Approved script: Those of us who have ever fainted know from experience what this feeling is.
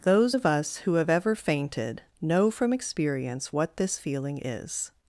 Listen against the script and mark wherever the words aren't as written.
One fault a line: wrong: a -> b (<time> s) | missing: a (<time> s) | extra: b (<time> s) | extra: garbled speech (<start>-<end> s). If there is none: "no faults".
no faults